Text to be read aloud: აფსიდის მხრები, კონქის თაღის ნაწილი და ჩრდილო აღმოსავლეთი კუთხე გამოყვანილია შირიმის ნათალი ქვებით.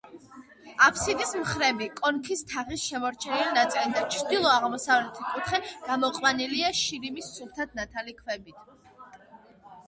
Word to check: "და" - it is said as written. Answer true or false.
true